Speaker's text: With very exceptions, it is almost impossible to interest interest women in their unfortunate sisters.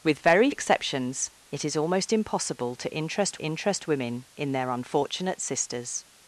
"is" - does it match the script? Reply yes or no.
yes